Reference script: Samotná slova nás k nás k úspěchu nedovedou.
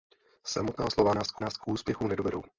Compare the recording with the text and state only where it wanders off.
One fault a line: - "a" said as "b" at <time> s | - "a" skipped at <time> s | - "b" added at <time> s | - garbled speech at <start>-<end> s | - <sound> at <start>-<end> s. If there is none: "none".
none